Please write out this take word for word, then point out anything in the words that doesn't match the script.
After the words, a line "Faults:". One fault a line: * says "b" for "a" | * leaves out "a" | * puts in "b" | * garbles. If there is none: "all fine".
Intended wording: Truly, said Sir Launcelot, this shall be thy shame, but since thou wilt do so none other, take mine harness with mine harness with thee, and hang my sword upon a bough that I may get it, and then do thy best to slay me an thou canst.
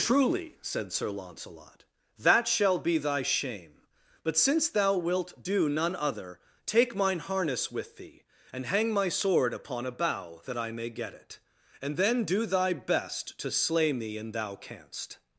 Truly, said Sir Launcelot, that shall be thy shame, but since thou wilt do none other, take mine harness with thee, and hang my sword upon a bough that I may get it, and then do thy best to slay me an thou canst.
Faults:
* says "that" for "this"
* leaves out "so"
* leaves out "mine harness with"